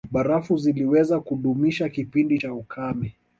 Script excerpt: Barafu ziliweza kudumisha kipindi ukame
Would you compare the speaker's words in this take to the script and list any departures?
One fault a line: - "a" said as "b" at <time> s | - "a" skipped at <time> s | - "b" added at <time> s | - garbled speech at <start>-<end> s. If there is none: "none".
- "cha" added at 2.3 s